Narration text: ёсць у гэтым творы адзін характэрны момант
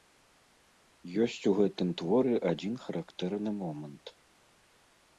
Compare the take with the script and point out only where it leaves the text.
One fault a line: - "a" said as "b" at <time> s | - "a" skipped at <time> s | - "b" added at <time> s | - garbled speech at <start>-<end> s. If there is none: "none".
none